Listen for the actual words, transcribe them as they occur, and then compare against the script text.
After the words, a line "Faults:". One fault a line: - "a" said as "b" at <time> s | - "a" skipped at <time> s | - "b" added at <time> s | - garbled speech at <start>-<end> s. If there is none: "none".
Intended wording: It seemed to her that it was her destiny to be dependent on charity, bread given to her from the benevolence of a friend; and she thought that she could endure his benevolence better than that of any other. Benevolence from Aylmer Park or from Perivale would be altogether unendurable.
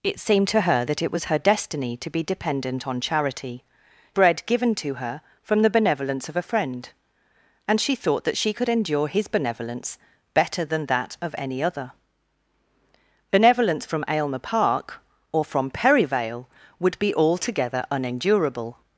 It seemed to her that it was her destiny to be dependent on charity, bread given to her from the benevolence of a friend; and she thought that she could endure his benevolence better than that of any other. Benevolence from Aylmer Park or from Perivale would be altogether unendurable.
Faults:
none